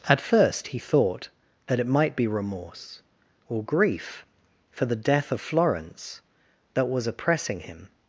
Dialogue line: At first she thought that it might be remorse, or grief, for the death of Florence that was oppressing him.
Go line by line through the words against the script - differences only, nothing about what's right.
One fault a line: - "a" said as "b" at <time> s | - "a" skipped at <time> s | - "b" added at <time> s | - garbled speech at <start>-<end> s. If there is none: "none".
- "she" said as "he" at 0.7 s